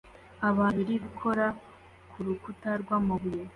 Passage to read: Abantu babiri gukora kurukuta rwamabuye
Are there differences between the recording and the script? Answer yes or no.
no